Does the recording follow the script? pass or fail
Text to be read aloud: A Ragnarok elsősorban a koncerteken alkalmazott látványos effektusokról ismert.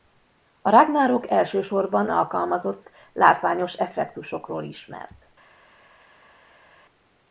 fail